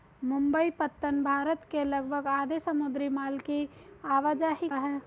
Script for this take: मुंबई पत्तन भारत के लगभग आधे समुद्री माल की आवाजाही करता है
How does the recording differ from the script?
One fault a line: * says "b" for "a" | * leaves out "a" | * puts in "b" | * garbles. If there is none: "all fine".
* leaves out "करता"